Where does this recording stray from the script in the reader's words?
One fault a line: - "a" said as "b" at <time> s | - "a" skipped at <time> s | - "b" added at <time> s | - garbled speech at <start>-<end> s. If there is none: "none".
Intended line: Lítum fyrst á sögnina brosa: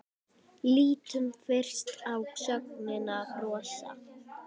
none